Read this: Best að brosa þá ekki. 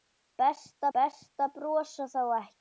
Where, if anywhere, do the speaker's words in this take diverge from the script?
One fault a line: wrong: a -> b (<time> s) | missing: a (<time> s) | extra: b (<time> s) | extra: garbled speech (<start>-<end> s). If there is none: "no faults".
extra: best (1.0 s)